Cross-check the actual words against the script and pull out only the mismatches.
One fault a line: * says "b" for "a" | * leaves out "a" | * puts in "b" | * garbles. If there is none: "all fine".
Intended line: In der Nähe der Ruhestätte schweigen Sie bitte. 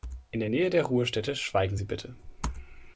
all fine